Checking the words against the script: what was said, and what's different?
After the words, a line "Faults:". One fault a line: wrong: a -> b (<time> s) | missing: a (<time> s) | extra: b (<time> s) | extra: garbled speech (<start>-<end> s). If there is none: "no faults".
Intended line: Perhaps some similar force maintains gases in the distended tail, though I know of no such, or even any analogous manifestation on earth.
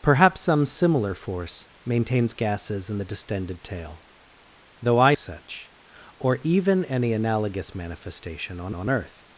Perhaps some similar force maintains gases in the distended tail, though I such, or even any analogous manifestation on on earth.
Faults:
missing: know of no (5.1 s)
extra: on (8.7 s)